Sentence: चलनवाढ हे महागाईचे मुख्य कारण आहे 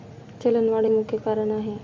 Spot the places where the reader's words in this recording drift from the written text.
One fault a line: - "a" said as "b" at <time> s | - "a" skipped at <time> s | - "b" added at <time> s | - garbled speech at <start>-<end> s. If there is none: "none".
- "हे महागाईचे" skipped at 0.8 s